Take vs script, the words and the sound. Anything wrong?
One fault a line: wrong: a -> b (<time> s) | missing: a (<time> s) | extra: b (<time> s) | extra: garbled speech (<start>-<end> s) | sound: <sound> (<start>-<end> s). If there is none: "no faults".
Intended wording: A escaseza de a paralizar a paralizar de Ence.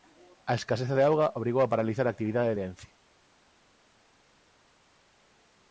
extra: auga obrigou (1.1 s)
wrong: paralizar -> actividade (2.1 s)